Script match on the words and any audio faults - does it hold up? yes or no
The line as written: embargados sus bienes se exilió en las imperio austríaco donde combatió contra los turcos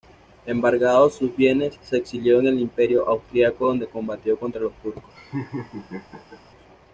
no